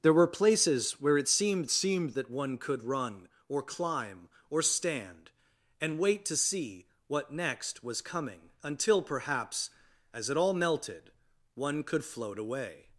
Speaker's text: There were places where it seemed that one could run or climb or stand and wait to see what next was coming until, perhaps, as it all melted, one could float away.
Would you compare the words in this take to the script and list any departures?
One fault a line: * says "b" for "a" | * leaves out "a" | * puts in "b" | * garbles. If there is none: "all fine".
* puts in "seemed"